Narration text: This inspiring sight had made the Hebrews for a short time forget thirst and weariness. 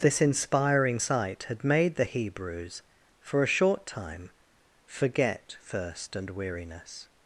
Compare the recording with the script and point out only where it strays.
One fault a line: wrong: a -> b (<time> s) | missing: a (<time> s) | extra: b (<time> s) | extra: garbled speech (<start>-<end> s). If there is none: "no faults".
no faults